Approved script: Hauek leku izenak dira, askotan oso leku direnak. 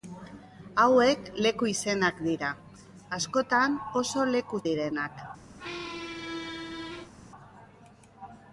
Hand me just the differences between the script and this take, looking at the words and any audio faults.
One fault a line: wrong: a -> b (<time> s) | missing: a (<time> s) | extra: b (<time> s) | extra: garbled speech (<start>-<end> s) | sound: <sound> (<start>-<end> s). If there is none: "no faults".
sound: squeak (5.6-7.1 s)